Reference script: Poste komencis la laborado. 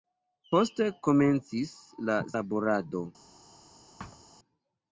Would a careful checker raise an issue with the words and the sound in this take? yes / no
yes